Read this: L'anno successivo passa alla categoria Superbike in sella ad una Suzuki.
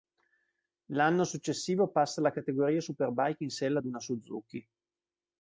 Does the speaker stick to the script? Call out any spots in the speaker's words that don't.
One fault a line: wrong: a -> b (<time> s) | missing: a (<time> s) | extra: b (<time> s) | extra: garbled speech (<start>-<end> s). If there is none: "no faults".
no faults